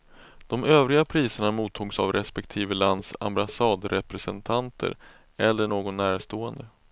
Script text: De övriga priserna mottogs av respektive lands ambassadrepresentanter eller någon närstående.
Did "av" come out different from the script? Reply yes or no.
no